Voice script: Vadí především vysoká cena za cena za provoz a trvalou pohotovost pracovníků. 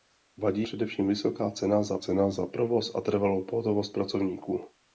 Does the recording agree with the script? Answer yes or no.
yes